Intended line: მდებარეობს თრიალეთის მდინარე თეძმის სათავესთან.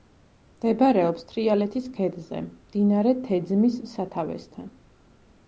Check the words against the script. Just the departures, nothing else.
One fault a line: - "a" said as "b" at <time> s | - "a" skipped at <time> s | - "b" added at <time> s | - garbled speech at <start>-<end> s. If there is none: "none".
- "ქედზე" added at 2.0 s